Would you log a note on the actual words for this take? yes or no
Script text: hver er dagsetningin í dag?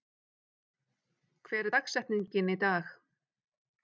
no